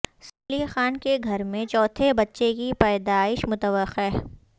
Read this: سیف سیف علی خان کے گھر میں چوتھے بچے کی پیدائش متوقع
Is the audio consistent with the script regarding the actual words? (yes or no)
no